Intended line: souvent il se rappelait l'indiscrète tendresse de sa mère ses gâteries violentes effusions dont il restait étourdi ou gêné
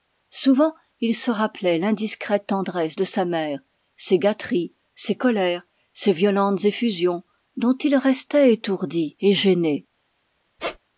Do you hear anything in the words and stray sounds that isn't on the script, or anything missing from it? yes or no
yes